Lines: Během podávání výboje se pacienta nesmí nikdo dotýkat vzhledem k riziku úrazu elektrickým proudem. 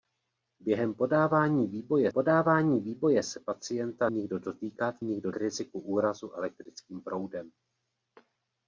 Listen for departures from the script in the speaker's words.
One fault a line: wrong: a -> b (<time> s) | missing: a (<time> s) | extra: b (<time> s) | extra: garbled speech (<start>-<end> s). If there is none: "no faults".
extra: podávání výboje (2.1 s)
missing: nesmí (4.1 s)
wrong: vzhledem -> nikdo (5.0 s)